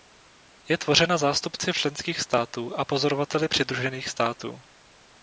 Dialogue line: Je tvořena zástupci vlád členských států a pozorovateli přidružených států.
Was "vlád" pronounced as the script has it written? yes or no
no